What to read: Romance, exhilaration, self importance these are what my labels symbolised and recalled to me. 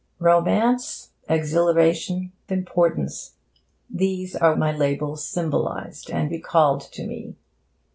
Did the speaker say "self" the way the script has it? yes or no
no